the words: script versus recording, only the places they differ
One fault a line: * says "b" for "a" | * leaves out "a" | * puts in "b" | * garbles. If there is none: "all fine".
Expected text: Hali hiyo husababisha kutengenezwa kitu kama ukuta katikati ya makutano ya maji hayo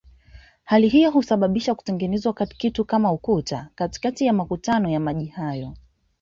all fine